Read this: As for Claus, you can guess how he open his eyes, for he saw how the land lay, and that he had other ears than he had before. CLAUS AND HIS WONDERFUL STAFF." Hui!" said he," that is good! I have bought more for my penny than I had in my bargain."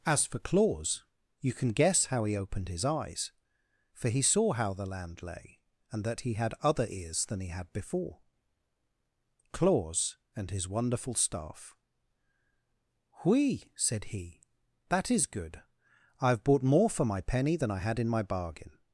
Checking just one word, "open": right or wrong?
wrong